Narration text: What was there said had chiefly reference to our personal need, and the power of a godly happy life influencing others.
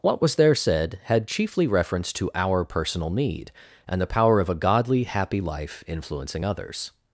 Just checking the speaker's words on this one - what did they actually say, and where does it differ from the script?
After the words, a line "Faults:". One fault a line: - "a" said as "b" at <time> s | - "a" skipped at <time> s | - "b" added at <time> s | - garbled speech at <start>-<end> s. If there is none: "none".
What was there said had chiefly reference to our personal need, and the power of a godly happy life influencing others.
Faults:
none